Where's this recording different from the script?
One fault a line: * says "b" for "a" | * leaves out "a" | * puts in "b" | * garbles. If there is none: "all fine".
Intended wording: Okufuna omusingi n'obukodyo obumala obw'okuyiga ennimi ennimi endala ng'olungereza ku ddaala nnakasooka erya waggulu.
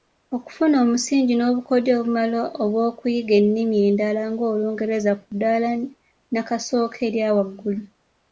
* leaves out "ennimi"